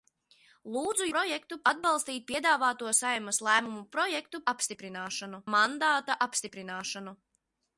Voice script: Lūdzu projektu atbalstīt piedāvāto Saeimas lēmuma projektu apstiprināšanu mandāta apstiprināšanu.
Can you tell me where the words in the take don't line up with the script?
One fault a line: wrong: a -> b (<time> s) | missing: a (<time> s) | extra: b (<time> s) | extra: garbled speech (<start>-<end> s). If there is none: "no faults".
no faults